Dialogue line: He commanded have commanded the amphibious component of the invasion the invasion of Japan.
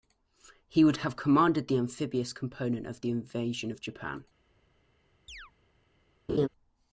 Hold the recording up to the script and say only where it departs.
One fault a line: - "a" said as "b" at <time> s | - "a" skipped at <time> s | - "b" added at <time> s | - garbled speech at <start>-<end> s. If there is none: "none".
- "commanded" said as "would" at 0.8 s
- "the invasion" skipped at 3.7 s